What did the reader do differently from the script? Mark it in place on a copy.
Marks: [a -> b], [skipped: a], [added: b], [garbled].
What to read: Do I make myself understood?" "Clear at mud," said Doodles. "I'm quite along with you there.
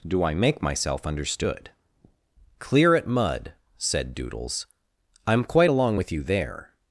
Do I make myself understood?" "Clear at mud," said Doodles. "I'm quite along with you there.